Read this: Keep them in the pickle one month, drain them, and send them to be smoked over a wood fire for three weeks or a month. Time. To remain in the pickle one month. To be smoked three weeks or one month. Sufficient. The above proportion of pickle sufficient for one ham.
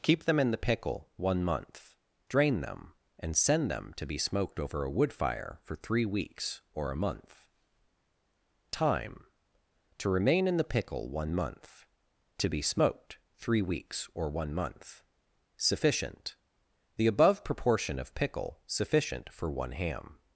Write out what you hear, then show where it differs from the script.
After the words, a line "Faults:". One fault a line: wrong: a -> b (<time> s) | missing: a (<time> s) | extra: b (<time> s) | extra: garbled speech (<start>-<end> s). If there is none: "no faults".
Keep them in the pickle one month, drain them, and send them to be smoked over a wood fire for three weeks or a month. Time. To remain in the pickle one month. To be smoked three weeks or one month. Sufficient. The above proportion of pickle sufficient for one ham.
Faults:
no faults